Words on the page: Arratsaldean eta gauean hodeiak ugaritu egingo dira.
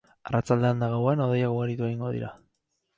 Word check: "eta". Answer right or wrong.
right